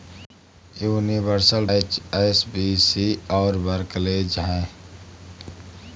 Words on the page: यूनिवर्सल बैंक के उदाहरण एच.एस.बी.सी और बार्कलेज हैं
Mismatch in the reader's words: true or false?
true